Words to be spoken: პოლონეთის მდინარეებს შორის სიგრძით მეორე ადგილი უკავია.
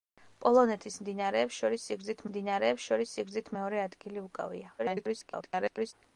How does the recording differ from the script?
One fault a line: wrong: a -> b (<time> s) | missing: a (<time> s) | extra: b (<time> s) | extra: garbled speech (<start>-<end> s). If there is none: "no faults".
extra: მდინარეებს შორის სიგრძით (2.3 s)
extra: garbled speech (4.8-5.9 s)